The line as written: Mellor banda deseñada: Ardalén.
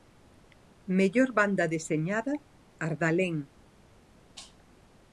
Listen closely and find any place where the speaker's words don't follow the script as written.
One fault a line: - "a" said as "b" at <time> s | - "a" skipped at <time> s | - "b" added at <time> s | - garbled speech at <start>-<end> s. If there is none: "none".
none